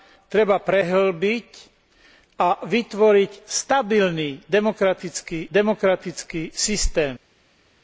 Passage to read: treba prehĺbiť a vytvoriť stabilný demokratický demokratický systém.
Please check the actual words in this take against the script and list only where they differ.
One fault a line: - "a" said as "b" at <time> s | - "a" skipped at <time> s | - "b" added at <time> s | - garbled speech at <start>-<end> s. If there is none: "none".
none